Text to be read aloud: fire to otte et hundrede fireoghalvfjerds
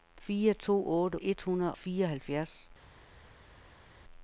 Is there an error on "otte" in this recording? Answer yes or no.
no